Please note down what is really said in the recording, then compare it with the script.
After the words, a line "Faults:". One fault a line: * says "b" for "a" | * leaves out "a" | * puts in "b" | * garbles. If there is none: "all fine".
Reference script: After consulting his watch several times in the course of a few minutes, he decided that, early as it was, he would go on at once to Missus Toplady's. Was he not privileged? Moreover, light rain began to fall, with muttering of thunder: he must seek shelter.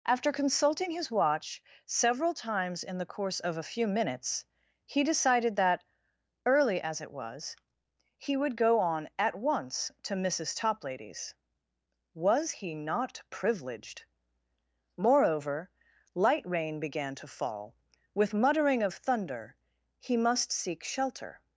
After consulting his watch several times in the course of a few minutes, he decided that, early as it was, he would go on at once to Missus Toplady's. Was he not privileged? Moreover, light rain began to fall, with muttering of thunder: he must seek shelter.
Faults:
all fine